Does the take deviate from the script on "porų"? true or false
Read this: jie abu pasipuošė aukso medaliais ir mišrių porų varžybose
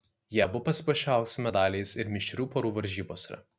false